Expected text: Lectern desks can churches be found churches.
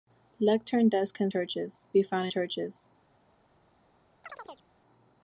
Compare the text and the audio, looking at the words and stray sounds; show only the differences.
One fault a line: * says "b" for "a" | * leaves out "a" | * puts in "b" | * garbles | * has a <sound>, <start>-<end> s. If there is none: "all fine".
* has a chirp, 4.2-4.7 s